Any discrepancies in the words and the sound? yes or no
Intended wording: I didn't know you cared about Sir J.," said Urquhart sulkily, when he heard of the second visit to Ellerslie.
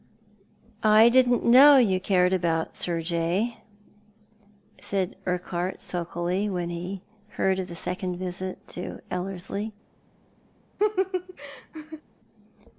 yes